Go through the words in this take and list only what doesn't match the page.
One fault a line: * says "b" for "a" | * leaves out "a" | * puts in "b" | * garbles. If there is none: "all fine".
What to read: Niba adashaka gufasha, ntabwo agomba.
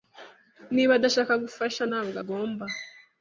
all fine